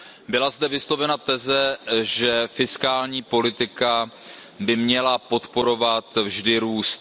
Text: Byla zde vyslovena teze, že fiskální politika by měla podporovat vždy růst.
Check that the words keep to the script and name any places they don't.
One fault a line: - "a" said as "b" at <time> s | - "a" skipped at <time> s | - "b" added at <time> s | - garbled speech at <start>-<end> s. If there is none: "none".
none